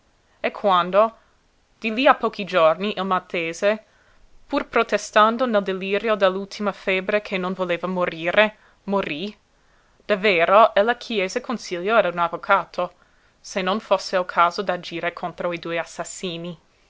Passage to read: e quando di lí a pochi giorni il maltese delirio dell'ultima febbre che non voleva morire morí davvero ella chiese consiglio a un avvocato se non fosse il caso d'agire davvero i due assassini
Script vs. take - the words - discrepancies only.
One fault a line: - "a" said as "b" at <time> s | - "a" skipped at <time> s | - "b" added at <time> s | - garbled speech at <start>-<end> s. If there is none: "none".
- "pur protestando nel" added at 4.5 s
- "davvero" said as "contro" at 15.1 s